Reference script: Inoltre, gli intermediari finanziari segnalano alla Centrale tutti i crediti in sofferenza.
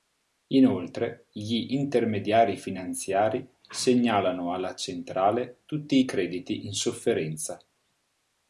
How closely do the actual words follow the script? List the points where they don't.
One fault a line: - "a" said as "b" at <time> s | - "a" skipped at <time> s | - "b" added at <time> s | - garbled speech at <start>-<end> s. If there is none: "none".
none